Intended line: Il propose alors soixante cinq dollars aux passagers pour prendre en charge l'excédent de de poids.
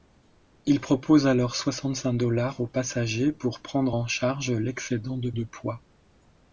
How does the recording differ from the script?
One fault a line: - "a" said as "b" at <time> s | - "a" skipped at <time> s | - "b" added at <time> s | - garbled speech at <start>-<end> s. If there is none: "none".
none